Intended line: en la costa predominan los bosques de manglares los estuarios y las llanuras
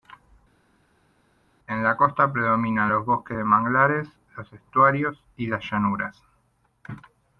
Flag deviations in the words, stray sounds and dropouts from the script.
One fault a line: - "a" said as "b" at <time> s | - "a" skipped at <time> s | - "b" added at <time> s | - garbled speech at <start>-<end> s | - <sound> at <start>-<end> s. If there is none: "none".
none